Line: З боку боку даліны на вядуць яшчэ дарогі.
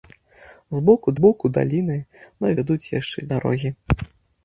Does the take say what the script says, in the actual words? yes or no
yes